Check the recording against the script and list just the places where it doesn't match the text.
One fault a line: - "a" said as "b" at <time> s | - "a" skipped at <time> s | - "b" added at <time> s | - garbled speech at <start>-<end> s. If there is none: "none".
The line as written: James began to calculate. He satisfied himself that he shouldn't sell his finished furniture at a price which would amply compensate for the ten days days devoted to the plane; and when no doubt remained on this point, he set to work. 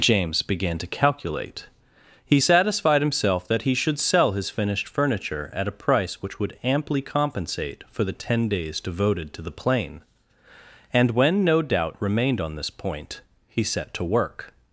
- "shouldn't" said as "should" at 3.7 s
- "days" skipped at 8.8 s